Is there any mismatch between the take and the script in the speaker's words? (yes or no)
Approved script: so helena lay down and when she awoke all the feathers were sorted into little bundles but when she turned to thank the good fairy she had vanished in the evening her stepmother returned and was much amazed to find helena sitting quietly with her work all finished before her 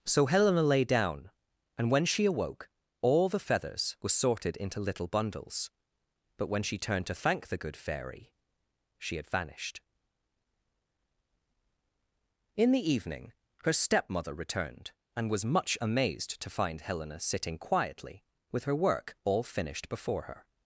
no